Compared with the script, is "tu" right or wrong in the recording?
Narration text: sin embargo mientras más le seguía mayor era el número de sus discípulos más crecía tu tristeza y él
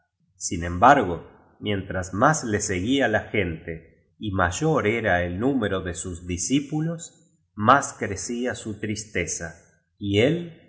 wrong